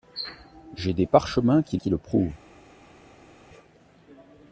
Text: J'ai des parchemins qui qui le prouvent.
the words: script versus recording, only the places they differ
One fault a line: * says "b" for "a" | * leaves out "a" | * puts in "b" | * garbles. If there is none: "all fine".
all fine